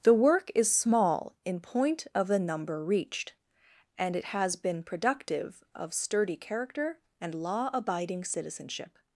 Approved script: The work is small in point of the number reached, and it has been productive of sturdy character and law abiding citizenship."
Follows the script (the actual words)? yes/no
yes